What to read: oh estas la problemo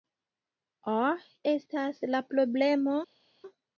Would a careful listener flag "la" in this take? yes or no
no